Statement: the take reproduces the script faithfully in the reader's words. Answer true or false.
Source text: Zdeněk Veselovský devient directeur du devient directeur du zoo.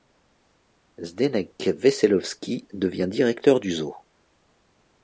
false